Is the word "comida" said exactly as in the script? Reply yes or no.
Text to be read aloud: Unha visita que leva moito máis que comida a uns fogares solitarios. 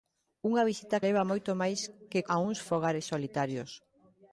no